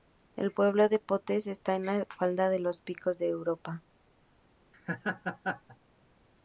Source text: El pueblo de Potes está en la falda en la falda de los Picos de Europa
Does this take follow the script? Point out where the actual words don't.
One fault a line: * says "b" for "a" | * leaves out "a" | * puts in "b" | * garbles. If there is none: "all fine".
* leaves out "en la falda"